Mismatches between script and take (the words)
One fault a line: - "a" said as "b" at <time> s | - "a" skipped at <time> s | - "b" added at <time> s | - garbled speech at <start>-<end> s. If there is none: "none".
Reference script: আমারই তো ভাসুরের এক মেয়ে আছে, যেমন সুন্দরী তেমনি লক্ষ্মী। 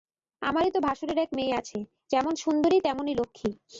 none